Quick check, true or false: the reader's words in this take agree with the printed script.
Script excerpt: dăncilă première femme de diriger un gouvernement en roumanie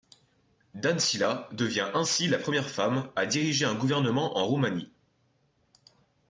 false